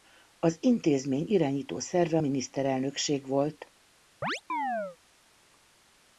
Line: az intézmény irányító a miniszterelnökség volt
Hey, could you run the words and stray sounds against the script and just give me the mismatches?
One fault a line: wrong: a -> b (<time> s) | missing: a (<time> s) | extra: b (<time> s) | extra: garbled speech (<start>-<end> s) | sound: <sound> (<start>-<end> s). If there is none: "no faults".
extra: szerve (1.8 s)
sound: chirp (4.2-5.0 s)